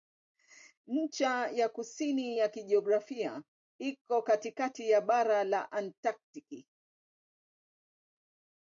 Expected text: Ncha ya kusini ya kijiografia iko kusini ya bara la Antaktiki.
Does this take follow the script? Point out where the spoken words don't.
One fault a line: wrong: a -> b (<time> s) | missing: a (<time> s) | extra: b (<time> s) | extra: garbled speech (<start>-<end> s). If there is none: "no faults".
wrong: kusini -> katikati (4.2 s)